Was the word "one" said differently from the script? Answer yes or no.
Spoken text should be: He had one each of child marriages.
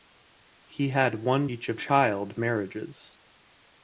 no